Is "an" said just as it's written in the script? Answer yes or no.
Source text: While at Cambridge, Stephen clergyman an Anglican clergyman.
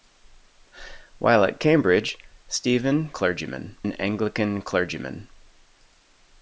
yes